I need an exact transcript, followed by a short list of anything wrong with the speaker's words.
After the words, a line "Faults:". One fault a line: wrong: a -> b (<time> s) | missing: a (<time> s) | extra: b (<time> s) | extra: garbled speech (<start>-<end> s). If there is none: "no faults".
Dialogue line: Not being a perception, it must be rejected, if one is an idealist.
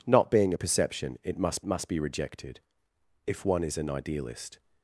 Not being a perception, it must must be rejected, if one is an idealist.
Faults:
extra: must (1.6 s)